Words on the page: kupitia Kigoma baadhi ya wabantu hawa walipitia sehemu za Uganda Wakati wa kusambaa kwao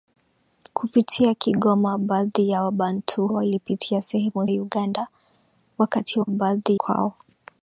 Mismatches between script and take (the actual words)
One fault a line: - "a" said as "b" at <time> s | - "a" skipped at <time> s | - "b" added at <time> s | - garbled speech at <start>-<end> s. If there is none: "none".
- "hawa" skipped at 3.3 s
- "za" skipped at 4.5 s
- "kusambaa" said as "baadhi" at 6.3 s